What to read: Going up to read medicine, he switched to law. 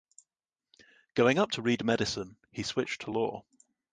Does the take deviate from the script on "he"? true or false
false